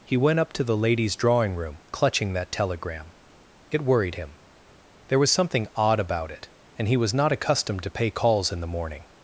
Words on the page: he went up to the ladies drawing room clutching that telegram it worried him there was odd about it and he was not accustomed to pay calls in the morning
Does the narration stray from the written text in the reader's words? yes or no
yes